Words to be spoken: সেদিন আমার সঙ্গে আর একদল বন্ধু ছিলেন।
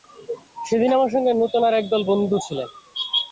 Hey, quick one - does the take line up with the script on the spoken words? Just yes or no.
no